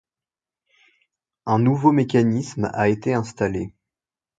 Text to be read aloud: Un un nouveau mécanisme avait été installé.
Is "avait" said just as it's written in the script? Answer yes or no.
no